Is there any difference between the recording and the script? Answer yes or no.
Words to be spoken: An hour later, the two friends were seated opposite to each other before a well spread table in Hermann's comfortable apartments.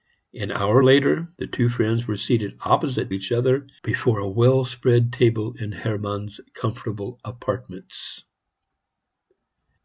yes